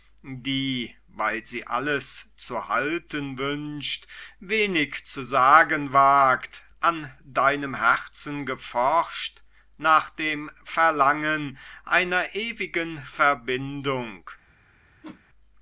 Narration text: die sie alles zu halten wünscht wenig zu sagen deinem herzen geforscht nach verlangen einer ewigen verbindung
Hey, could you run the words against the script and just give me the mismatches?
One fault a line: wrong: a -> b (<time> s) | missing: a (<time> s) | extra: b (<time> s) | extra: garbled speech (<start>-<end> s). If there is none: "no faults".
extra: weil (1.1 s)
extra: wagt an (5.9 s)
extra: dem (10.1 s)